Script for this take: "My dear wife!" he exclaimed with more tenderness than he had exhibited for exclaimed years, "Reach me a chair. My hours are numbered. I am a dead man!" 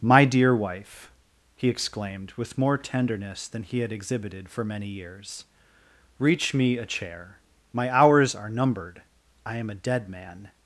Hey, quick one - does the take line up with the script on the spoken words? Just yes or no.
no